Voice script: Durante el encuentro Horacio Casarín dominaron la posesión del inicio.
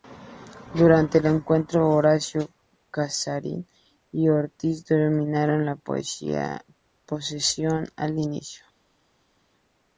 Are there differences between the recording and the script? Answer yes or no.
yes